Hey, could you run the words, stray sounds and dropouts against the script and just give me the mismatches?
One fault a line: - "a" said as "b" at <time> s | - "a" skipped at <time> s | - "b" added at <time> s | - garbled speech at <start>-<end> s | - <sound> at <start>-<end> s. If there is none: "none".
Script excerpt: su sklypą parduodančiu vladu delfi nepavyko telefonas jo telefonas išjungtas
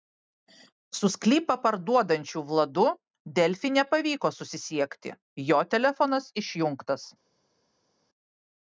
- "telefonas" said as "susisiekti" at 4.4 s